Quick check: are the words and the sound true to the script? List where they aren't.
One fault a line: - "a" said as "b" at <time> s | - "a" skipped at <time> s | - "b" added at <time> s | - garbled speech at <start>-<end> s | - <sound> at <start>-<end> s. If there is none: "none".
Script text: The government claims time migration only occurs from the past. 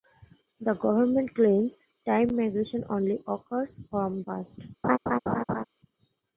- "the" skipped at 4.2 s
- laugh at 4.8-5.6 s